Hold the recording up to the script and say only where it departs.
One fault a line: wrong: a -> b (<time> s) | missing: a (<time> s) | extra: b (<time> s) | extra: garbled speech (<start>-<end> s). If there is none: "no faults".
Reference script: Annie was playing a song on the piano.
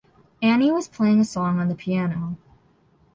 no faults